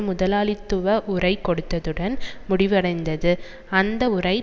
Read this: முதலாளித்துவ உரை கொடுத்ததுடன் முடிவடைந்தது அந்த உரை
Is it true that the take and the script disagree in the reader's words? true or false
false